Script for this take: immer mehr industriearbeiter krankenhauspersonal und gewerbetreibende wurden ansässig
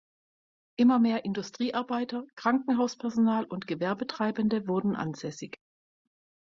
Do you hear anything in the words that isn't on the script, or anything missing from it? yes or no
no